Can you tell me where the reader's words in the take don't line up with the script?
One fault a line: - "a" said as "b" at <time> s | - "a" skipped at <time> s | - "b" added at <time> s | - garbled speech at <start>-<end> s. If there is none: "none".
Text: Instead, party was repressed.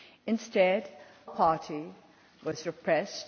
none